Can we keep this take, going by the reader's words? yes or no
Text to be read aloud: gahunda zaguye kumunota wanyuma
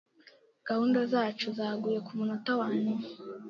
no